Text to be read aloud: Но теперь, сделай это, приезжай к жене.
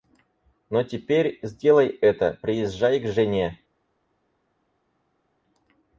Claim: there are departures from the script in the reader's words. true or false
false